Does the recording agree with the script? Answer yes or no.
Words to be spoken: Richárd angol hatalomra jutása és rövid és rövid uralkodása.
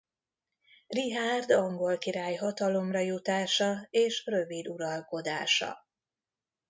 no